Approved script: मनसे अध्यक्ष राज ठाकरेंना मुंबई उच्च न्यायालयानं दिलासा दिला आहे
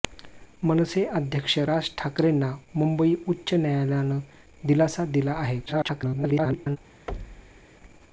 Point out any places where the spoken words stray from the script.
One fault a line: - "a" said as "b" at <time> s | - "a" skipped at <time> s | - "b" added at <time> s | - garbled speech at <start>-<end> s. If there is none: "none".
- garbled speech at 5.7-6.8 s